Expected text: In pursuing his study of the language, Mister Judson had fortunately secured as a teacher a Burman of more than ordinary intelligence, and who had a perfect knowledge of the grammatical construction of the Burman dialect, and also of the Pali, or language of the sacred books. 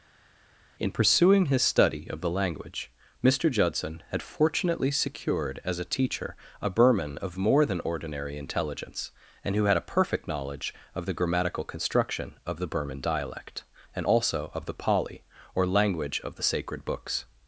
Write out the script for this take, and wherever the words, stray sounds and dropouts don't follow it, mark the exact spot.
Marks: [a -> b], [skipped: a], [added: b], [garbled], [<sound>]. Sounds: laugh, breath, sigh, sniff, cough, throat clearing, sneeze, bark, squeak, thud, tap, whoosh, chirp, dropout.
In pursuing his study of the language, Mister Judson had fortunately secured as a teacher a Burman of more than ordinary intelligence, and who had a perfect knowledge of the grammatical construction of the Burman dialect, and also of the Pali, or language of the sacred books.